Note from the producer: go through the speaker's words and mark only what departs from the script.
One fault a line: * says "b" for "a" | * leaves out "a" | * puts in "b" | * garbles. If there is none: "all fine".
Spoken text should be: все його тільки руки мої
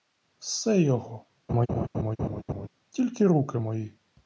all fine